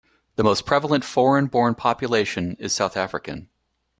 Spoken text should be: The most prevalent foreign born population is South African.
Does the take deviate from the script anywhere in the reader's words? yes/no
no